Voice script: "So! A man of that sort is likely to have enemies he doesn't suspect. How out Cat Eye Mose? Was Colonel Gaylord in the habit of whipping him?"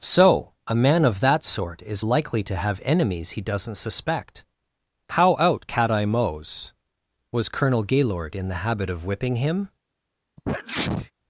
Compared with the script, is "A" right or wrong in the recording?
right